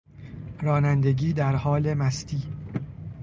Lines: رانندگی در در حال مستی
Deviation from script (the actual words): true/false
true